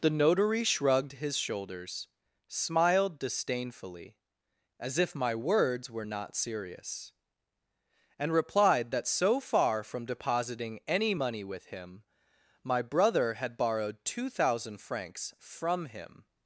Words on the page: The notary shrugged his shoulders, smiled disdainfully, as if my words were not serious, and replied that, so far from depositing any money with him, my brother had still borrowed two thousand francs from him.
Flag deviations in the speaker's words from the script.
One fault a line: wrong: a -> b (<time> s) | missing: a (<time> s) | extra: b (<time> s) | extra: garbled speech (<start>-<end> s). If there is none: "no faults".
missing: still (13.6 s)